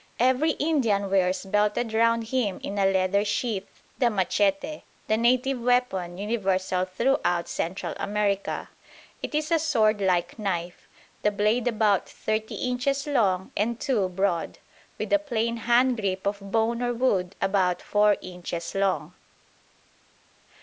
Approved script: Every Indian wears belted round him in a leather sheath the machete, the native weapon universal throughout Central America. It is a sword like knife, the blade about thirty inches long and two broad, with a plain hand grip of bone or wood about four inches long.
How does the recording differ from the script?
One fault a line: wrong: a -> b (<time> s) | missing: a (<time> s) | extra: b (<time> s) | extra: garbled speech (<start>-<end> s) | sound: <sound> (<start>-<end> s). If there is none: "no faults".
no faults